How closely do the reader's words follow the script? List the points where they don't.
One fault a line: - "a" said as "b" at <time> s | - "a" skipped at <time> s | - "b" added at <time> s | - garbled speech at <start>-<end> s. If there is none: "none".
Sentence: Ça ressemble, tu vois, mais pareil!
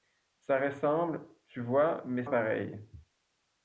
none